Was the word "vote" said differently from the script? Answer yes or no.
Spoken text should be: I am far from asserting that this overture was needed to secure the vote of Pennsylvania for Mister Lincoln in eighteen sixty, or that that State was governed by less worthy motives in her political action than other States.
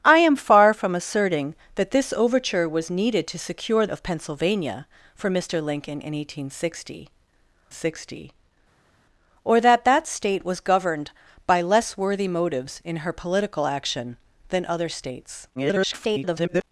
yes